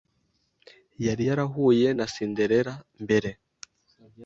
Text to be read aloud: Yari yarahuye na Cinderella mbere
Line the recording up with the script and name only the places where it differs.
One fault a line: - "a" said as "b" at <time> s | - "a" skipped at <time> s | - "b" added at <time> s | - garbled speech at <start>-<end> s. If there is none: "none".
none